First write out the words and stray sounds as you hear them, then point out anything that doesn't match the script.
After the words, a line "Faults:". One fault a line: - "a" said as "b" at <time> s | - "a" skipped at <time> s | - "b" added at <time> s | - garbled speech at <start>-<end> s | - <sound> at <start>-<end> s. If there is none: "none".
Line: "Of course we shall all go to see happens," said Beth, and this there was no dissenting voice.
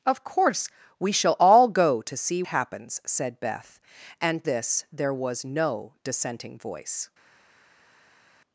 "Of course we shall all go to see happens," said Beth, and this there was no dissenting voice.
Faults:
none